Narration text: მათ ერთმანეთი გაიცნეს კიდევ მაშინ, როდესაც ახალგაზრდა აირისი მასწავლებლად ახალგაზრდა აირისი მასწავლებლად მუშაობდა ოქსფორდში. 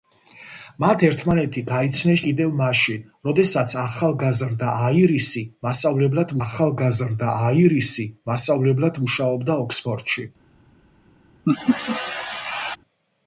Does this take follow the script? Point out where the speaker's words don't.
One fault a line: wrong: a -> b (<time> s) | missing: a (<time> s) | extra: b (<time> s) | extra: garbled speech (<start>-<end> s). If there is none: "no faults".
no faults